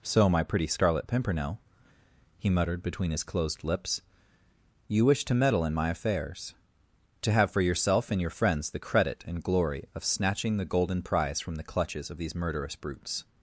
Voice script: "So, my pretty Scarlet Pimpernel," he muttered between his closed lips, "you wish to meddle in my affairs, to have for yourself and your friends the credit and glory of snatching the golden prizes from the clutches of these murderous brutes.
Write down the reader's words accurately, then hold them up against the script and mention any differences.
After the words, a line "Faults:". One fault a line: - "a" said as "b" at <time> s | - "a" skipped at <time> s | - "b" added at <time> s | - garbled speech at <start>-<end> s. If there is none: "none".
"So, my pretty Scarlet Pimpernel," he muttered between his closed lips, "you wish to meddle in my affairs, to have for yourself and your friends the credit and glory of snatching the golden prize from the clutches of these murderous brutes.
Faults:
- "prizes" said as "prize" at 11.0 s